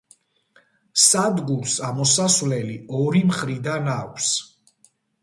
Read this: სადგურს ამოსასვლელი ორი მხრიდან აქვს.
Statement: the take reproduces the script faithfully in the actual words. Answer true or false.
true